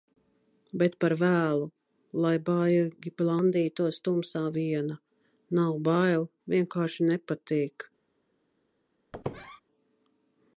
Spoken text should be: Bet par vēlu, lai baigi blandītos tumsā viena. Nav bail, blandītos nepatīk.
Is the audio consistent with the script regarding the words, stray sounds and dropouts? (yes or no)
no